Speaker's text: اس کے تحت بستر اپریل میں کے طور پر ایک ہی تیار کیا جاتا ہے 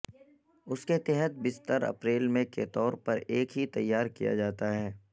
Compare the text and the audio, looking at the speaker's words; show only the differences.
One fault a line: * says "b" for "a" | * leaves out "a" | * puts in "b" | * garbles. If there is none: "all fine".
all fine